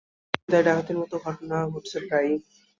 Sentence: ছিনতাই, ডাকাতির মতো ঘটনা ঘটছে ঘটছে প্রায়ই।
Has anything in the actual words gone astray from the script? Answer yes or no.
yes